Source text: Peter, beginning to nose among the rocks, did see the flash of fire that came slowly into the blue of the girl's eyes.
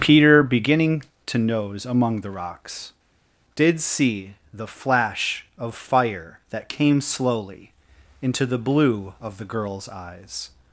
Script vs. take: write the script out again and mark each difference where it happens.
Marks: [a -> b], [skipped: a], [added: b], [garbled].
Peter, beginning to nose among the rocks, did see the flash of fire that came slowly into the blue of the girl's eyes.